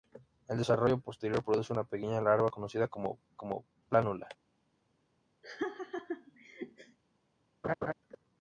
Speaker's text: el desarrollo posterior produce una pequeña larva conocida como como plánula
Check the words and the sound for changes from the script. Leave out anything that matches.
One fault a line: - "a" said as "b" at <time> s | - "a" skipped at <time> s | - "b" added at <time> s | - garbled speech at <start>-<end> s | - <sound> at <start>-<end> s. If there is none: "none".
- laugh at 5.4-7.0 s
- laugh at 7.6-7.9 s